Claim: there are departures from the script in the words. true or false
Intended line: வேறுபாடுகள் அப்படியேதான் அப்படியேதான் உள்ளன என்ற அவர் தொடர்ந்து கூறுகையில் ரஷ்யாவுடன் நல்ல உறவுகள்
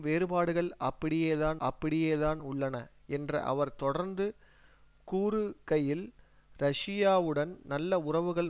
false